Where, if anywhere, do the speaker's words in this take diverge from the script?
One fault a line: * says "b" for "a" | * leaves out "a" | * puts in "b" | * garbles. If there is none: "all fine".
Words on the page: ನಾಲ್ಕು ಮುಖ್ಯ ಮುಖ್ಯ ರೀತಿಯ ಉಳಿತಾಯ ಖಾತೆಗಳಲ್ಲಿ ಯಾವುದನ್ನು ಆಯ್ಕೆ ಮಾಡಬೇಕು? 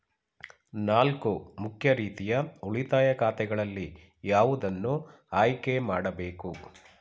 * leaves out "ಮುಖ್ಯ"